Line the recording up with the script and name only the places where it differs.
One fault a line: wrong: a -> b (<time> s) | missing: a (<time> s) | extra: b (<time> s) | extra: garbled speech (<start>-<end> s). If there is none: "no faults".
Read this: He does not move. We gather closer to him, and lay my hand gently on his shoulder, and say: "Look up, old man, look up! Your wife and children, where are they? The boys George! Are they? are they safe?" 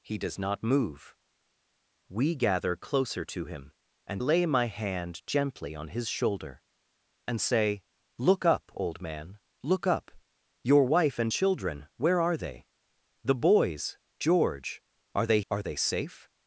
no faults